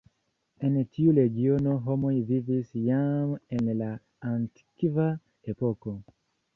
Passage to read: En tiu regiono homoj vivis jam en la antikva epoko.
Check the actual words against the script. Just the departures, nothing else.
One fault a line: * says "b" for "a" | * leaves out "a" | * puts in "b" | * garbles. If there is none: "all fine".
all fine